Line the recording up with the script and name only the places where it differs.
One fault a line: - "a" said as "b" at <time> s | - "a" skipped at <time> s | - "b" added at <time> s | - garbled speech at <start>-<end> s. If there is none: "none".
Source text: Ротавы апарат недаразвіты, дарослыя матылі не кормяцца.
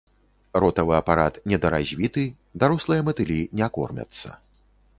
none